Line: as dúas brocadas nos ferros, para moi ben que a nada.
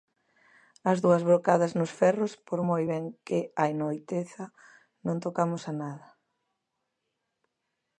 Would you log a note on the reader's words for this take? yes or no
yes